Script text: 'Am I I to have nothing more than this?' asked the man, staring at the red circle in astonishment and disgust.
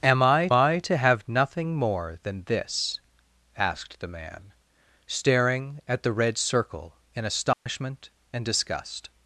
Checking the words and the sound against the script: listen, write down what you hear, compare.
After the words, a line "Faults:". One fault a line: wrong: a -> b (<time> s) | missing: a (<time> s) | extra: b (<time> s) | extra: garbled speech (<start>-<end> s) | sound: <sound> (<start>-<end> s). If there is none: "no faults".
'Am I I to have nothing more than this?' asked the man, staring at the red circle in astonishment and disgust.
Faults:
sound: dropout (7.5-7.7 s)